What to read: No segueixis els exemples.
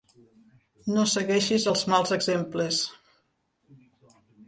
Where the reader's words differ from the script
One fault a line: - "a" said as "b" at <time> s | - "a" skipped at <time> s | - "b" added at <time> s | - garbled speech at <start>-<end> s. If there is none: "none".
- "mals" added at 1.9 s